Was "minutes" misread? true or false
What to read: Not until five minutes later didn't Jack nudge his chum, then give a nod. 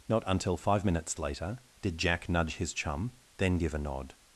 false